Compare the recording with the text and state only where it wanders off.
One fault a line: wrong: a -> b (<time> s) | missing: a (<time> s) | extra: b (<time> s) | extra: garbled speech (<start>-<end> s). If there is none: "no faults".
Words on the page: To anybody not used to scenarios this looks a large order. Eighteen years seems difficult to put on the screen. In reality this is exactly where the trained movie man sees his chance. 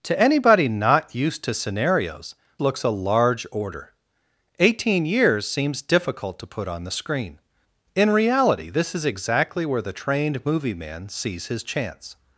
missing: this (2.4 s)